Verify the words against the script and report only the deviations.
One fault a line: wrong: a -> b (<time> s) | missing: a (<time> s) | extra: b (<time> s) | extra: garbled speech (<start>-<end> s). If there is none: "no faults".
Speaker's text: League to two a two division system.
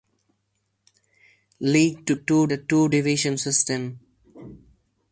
no faults